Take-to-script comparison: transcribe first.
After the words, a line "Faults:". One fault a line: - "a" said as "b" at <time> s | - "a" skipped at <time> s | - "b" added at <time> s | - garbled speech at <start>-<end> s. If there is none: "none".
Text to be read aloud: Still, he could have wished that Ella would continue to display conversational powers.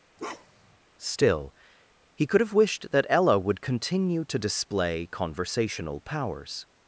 Still, he could have wished that Ella would continue to display conversational powers.
Faults:
none